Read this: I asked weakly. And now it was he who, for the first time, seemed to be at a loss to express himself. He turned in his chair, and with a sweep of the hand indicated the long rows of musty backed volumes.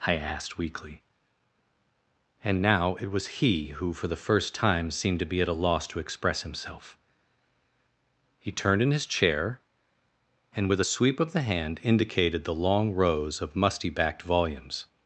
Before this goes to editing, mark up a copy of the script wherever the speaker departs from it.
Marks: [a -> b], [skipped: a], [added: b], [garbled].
I asked weakly. And now it was he who, for the first time, seemed to be at a loss to express himself. He turned in his chair, and with a sweep of the hand indicated the long rows of musty backed volumes.